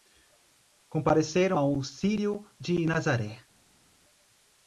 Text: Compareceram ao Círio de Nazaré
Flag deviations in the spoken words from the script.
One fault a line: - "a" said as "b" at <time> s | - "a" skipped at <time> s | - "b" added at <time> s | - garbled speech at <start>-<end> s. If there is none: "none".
none